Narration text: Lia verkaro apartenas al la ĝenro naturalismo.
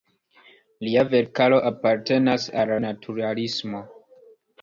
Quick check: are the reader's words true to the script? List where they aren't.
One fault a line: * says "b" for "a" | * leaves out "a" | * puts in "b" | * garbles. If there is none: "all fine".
* leaves out "la ĝenro"